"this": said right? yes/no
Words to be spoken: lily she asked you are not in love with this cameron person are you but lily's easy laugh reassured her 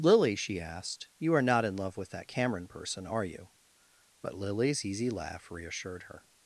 no